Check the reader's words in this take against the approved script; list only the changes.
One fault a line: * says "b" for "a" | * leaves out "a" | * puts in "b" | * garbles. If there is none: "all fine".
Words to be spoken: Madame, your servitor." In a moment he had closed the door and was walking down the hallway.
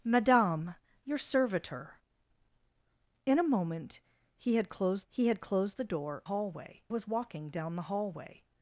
* puts in "he had closed"
* says "hallway" for "and"